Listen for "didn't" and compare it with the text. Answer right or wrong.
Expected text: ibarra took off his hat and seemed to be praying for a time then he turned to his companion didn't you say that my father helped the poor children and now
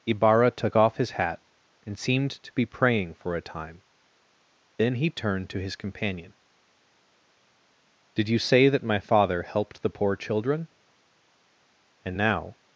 wrong